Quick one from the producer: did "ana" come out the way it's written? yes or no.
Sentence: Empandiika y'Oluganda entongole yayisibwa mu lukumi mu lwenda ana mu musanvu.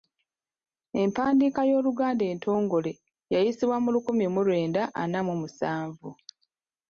yes